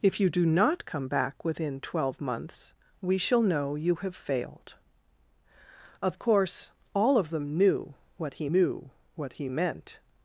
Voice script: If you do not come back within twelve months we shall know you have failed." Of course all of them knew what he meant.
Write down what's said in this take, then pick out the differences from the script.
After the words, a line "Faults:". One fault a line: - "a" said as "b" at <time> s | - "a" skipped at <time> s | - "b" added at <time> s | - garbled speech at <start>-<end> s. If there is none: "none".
If you do not come back within twelve months we shall know you have failed." Of course all of them knew what he knew what he meant.
Faults:
- "knew what he" added at 8.5 s